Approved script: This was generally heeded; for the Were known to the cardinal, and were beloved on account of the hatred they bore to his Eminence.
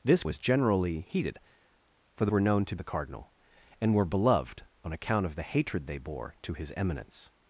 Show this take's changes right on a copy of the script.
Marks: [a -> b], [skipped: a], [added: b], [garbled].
This was generally heeded; for the Were known to the cardinal, and were beloved on account of the hatred they bore to his Eminence.